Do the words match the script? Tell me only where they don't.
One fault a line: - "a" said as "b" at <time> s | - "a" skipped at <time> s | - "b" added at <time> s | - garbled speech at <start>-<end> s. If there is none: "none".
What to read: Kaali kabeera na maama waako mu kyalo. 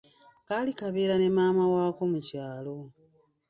- "na" said as "ne" at 1.2 s